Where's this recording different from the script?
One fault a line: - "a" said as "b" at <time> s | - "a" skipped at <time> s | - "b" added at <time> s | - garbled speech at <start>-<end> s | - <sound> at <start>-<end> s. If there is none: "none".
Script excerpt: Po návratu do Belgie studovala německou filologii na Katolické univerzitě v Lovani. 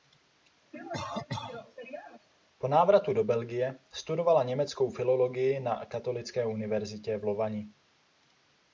- cough at 0.7-2.3 s